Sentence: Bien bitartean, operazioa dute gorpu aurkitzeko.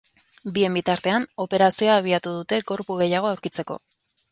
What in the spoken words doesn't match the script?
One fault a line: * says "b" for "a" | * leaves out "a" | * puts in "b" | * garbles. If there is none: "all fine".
* puts in "abiatu"
* puts in "gehiago"